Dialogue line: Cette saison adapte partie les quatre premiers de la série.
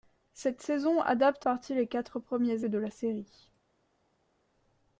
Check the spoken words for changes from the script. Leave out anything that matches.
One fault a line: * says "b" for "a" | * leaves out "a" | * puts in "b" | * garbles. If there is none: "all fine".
all fine